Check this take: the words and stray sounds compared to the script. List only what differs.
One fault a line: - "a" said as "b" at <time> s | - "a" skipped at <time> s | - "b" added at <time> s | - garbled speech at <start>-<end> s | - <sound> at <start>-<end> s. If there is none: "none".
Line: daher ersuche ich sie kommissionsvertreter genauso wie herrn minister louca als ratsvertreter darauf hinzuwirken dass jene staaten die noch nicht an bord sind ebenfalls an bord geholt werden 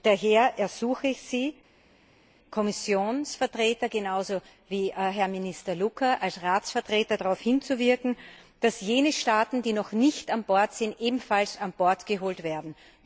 none